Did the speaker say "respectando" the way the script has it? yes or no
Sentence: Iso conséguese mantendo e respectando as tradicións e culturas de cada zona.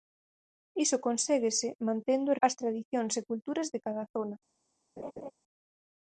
no